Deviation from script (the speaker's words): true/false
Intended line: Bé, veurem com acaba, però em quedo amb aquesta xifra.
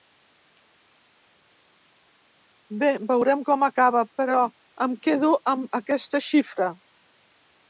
false